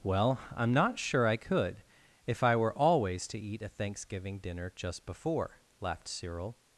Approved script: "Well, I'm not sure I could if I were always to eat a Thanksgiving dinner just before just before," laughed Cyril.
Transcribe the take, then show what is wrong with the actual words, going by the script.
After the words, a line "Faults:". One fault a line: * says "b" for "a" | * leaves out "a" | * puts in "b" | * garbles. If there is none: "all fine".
"Well, I'm not sure I could if I were always to eat a Thanksgiving dinner just before," laughed Cyril.
Faults:
* leaves out "just before"